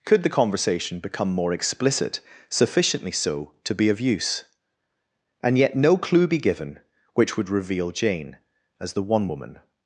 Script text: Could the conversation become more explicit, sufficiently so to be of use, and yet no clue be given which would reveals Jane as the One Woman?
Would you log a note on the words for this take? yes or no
yes